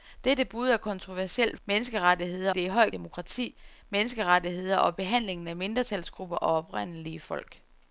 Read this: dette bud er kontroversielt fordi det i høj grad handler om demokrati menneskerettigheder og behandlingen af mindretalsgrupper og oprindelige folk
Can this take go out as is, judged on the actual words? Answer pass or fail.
fail